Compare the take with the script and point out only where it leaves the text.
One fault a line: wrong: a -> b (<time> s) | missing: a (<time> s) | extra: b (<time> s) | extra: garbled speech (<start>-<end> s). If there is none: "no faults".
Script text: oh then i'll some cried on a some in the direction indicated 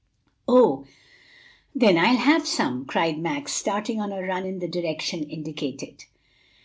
extra: have (2.2 s)
extra: max starting (3.2 s)
wrong: some -> run (4.2 s)